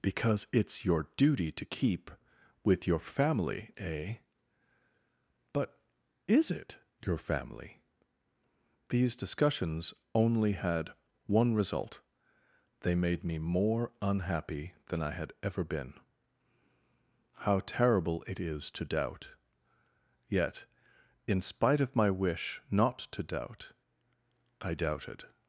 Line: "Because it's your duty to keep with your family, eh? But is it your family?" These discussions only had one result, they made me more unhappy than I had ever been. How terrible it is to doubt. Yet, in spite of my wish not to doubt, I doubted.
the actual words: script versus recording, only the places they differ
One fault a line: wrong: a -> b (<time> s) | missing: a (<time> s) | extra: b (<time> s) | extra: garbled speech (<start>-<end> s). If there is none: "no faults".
no faults